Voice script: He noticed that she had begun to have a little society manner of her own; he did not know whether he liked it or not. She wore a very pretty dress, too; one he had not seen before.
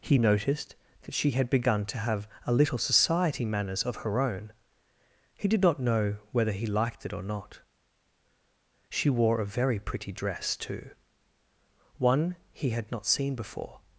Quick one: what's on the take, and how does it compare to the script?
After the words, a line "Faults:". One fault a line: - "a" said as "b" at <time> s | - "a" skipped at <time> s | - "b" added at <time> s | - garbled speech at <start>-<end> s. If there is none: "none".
He noticed that she had begun to have a little society manners of her own; he did not know whether he liked it or not. She wore a very pretty dress, too; one he had not seen before.
Faults:
- "manner" said as "manners" at 3.4 s